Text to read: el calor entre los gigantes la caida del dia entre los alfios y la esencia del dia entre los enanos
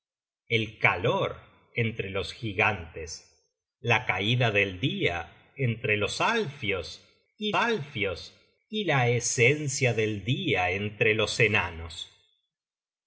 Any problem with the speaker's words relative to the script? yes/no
yes